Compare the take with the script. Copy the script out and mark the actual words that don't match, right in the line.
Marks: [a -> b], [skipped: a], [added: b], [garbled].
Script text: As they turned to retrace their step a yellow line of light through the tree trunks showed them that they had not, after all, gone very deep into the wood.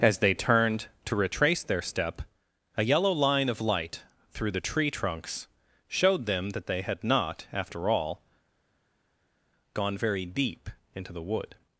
As they turned to retrace their step a yellow line of light through the tree trunks showed them that they had not, after all, gone very deep into the wood.